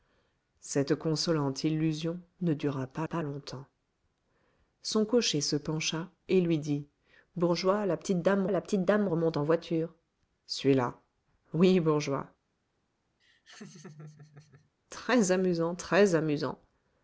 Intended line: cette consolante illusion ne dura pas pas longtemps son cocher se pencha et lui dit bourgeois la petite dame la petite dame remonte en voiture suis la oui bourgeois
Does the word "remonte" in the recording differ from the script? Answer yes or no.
no